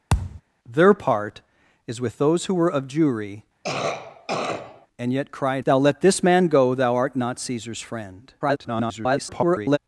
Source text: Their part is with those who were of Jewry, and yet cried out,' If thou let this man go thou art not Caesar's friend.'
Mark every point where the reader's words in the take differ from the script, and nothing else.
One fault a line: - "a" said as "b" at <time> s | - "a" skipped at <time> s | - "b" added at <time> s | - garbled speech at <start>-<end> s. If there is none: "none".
- "out If" skipped at 5.6 s
- garbled speech at 8.4-9.8 s